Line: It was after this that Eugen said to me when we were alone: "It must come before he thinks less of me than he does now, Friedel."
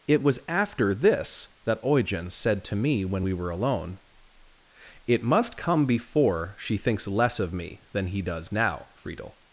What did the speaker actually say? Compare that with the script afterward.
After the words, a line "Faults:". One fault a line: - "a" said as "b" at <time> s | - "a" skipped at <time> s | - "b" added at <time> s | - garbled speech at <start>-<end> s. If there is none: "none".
It was after this that Eugen said to me when we were alone: "It must come before she thinks less of me than he does now, Friedel."
Faults:
- "he" said as "she" at 6.6 s